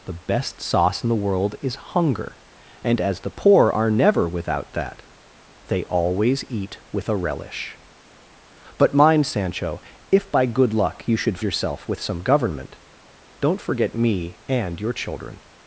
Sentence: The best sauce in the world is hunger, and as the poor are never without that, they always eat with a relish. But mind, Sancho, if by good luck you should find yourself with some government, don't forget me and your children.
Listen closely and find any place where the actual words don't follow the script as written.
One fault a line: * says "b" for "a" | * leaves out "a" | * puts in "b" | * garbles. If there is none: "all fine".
* leaves out "find"